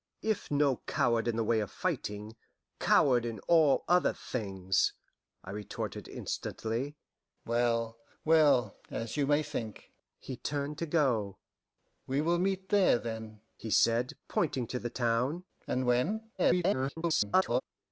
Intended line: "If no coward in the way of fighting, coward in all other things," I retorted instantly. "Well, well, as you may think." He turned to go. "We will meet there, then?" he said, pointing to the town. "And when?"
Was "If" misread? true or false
false